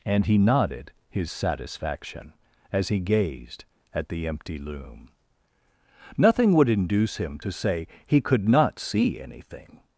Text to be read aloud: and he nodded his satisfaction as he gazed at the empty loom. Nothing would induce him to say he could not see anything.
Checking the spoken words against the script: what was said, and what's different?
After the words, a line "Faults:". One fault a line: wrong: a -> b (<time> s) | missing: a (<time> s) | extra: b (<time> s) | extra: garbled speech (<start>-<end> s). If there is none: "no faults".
and he nodded his satisfaction as he gazed at the empty loom. Nothing would induce him to say he could not see anything.
Faults:
no faults